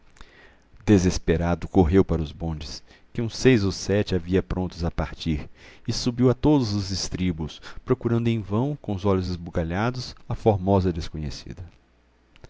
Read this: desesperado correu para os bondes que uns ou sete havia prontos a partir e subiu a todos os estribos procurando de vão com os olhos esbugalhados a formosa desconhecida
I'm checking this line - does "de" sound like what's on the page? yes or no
no